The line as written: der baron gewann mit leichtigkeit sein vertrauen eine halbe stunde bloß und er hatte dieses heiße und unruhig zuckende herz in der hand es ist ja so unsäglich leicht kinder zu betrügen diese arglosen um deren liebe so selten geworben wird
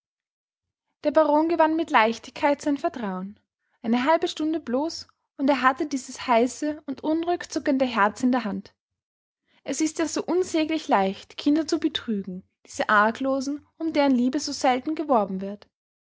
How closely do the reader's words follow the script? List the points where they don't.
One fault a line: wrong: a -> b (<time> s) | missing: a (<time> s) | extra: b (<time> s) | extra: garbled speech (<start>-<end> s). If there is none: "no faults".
no faults